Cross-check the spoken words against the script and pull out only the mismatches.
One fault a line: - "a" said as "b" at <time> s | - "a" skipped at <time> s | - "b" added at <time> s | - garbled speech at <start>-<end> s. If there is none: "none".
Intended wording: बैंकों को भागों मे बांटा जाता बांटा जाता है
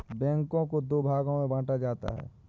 - "दो" added at 0.8 s
- "बांटा जाता" skipped at 2.1 s